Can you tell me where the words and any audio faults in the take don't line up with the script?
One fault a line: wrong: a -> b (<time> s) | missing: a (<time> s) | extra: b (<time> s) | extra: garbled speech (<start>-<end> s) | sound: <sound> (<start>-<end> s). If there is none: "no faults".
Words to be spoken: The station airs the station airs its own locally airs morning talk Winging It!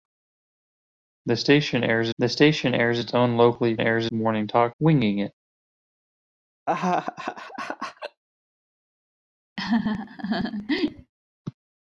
sound: laugh (6.7-8.2 s)
sound: laugh (9.6-11.1 s)